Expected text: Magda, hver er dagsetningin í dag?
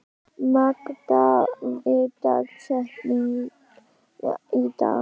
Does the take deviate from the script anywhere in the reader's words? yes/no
yes